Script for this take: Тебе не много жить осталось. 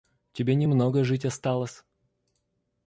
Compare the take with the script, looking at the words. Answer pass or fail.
pass